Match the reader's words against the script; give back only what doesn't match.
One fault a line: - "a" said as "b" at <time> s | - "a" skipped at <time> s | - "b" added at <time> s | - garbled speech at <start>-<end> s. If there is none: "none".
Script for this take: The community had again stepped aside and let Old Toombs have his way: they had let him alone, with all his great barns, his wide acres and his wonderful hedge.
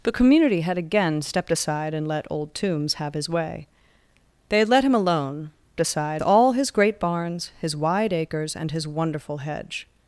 - "with" said as "aside" at 5.8 s